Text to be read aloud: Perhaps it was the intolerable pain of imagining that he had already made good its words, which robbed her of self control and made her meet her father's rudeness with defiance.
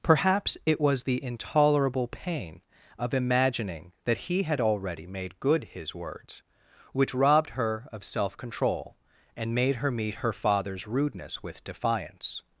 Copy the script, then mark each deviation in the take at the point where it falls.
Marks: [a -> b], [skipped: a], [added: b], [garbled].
Perhaps it was the intolerable pain of imagining that he had already made good [its -> his] words, which robbed her of self control and made her meet her father's rudeness with defiance.